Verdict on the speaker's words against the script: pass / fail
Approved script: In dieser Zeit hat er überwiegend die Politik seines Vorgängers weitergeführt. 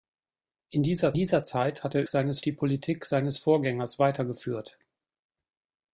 fail